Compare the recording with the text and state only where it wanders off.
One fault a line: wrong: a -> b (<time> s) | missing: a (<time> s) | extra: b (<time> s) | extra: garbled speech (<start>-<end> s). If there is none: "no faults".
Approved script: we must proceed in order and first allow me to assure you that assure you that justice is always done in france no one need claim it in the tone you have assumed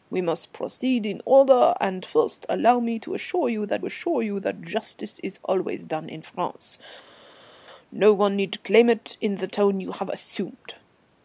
no faults